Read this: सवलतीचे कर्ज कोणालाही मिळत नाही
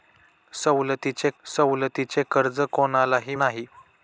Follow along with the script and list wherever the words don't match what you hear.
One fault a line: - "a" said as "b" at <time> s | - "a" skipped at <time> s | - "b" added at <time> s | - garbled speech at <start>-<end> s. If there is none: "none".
- "सवलतीचे" added at 1.5 s
- "मिळत" skipped at 3.4 s